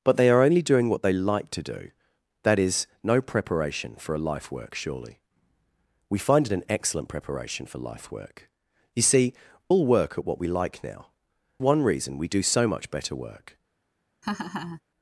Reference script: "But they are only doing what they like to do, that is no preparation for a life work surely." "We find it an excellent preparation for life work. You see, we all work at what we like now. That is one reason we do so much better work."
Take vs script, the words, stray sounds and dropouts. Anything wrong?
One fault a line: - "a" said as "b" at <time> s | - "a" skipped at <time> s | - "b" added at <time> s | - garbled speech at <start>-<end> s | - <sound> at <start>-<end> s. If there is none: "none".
- "we" skipped at 9.3 s
- "That is" skipped at 11.1 s
- laugh at 14.2-14.8 s